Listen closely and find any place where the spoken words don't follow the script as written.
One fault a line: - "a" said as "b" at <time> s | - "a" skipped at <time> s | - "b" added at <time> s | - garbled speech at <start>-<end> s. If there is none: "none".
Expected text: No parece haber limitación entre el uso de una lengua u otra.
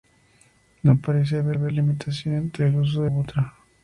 - "haber" added at 1.5 s
- "una lengua" skipped at 3.1 s